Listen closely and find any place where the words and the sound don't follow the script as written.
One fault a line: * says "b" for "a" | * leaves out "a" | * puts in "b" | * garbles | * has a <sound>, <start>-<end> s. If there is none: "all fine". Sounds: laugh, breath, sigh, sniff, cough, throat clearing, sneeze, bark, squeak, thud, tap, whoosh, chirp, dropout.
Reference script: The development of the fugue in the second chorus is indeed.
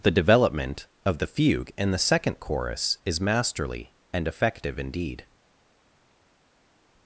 * puts in "masterly and effective"